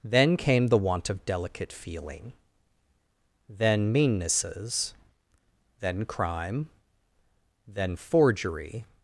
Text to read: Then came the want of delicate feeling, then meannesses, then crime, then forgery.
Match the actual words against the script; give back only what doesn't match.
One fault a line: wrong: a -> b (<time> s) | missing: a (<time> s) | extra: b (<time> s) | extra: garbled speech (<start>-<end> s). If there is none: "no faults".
no faults